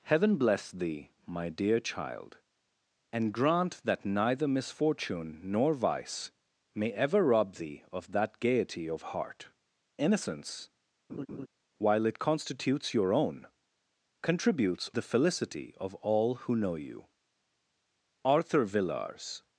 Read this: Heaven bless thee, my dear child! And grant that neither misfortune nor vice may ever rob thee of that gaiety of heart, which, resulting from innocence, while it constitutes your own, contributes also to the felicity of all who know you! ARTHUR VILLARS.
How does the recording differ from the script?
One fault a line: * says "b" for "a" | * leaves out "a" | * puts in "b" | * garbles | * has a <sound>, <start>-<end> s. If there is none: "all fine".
* leaves out "which resulting from"
* has a laugh, 11.1-11.5 s
* leaves out "also to"